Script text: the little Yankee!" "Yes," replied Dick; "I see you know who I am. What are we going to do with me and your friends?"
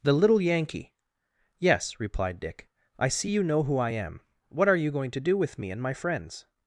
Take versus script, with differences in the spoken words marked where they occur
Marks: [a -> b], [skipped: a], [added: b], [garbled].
the little Yankee!" "Yes," replied Dick; "I see you know who I am. What are [we -> you] going to do with me and [your -> my] friends?"